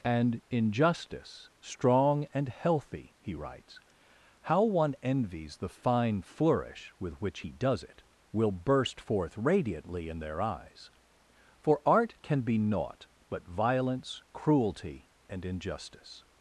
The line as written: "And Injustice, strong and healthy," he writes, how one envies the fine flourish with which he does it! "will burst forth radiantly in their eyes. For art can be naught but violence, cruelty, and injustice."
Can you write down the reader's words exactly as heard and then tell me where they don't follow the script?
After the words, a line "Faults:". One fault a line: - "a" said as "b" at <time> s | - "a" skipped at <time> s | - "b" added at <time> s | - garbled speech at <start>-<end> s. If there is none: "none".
"And Injustice, strong and healthy," he writes, how one envies the fine flourish with which he does it! "will burst forth radiantly in their eyes. For art can be naught but violence, cruelty, and injustice."
Faults:
none